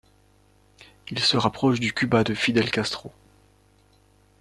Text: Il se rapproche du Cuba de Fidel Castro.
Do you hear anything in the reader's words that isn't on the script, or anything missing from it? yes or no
no